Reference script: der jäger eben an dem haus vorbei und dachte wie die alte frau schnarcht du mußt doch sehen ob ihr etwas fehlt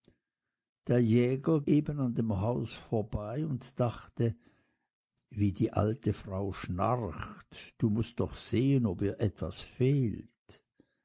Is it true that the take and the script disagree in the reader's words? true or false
false